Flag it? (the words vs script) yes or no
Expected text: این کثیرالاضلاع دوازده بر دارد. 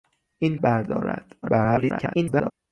yes